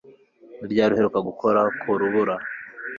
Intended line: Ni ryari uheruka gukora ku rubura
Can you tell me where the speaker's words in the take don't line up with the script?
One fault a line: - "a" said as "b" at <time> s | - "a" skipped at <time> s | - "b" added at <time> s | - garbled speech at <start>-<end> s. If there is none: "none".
none